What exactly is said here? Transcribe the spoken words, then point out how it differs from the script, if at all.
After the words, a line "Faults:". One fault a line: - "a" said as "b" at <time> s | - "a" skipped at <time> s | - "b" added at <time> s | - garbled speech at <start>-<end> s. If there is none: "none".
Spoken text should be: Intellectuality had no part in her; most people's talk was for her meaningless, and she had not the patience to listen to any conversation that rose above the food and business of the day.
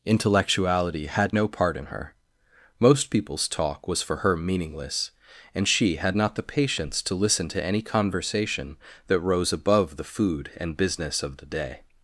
Intellectuality had no part in her; most people's talk was for her meaningless, and she had not the patience to listen to any conversation that rose above the food and business of the day.
Faults:
none